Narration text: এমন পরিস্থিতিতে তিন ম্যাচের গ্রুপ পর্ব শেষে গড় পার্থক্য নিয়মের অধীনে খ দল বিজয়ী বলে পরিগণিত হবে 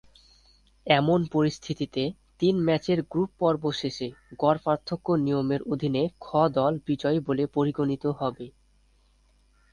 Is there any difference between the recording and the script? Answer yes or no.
no